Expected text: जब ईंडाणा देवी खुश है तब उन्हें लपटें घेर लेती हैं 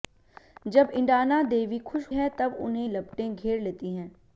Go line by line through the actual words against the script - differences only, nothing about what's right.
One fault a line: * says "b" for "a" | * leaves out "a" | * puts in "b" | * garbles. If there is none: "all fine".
all fine